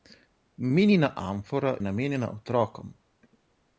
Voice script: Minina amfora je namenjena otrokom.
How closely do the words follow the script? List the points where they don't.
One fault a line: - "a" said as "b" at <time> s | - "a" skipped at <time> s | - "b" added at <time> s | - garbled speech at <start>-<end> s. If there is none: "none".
- "je" skipped at 1.8 s